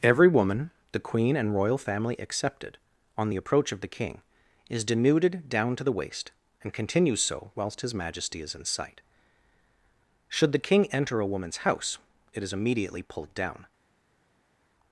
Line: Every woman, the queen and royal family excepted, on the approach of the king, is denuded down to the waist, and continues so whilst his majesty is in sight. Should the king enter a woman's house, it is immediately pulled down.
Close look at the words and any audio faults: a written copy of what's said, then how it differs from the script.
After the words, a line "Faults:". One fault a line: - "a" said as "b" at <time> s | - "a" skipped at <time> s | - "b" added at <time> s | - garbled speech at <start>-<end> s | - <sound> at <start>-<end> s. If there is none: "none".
Every woman, the queen and royal family excepted, on the approach of the king, is denuded down to the waist, and continues so whilst his majesty is in sight. Should the king enter a woman's house, it is immediately pulled down.
Faults:
none